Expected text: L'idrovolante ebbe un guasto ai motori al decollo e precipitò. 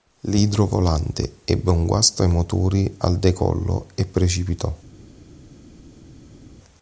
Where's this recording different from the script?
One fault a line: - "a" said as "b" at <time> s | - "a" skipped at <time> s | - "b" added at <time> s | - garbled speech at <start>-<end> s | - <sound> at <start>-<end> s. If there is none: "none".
none